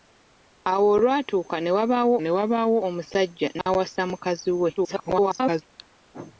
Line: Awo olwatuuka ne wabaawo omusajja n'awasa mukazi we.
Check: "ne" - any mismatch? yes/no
no